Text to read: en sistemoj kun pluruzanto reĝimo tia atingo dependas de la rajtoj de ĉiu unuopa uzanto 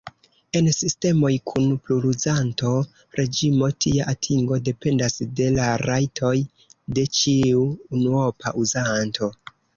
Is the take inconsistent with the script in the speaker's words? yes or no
no